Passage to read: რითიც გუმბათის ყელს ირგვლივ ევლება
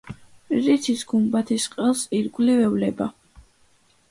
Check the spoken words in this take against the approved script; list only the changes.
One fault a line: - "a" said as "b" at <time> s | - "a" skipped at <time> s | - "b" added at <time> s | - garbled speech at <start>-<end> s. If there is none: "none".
none